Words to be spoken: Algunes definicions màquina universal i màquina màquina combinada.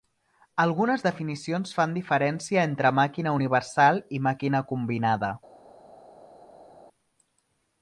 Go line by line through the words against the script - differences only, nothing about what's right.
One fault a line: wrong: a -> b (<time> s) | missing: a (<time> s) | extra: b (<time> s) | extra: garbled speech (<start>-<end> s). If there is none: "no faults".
extra: fan diferència entre (1.8 s)
missing: màquina (4.6 s)